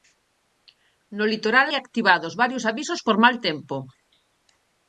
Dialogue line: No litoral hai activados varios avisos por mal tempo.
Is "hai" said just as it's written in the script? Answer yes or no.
no